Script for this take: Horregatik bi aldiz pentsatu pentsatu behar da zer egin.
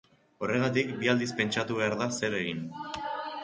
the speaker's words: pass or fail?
fail